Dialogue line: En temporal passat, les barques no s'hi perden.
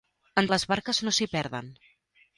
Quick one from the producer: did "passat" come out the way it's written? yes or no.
no